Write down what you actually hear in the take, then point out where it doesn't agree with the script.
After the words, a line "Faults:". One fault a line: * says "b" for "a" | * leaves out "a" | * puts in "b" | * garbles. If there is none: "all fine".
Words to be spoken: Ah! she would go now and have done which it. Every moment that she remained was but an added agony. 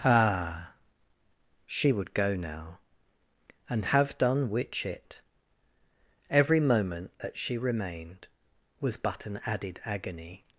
Ah! she would go now and have done which it. Every moment that she remained was but an added agony.
Faults:
all fine